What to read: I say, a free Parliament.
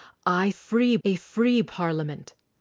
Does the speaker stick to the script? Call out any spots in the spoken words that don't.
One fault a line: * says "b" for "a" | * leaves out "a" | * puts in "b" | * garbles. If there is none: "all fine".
* says "free" for "say"